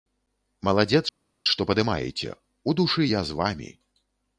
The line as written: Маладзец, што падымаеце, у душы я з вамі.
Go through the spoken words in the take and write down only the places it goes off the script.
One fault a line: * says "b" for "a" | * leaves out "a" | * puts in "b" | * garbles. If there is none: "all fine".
all fine